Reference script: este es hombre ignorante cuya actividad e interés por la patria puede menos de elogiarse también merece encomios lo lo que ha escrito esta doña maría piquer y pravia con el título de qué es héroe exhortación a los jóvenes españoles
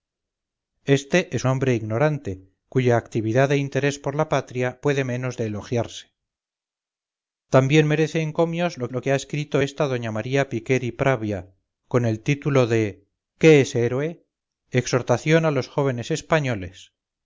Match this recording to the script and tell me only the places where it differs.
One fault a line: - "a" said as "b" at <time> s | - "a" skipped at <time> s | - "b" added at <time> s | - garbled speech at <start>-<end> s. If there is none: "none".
none